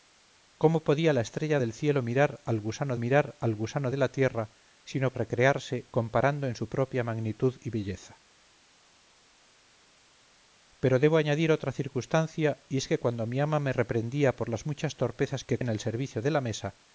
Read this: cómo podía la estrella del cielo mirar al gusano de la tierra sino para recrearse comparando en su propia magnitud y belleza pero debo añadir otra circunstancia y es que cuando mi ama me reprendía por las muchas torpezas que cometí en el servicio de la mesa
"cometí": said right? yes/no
no